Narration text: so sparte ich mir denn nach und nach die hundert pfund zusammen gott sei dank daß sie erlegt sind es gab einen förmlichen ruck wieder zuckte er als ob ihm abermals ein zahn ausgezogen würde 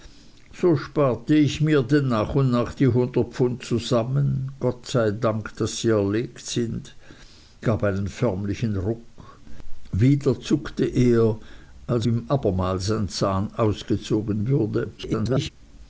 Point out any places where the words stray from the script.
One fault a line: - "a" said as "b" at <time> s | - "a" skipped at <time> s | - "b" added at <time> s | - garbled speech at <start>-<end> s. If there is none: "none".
- "es" skipped at 7.0 s
- "ob" skipped at 12.1 s
- garbled speech at 15.0-15.5 s